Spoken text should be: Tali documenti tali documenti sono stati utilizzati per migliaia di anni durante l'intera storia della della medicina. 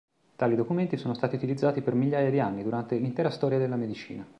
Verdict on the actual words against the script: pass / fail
fail